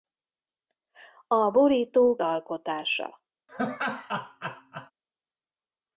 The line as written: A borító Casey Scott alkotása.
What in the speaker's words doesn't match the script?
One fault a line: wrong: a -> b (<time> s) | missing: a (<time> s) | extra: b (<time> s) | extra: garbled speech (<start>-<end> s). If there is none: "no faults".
missing: Casey Scott (2.2 s)